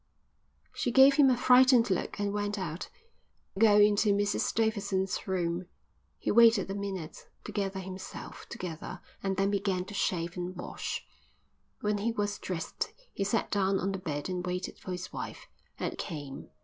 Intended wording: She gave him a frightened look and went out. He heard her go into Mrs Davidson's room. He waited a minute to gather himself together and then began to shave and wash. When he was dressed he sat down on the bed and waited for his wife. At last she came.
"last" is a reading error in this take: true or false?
true